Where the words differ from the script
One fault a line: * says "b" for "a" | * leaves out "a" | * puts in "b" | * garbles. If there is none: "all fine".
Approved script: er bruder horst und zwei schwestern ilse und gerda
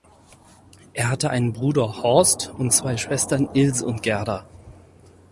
* puts in "hatte einen"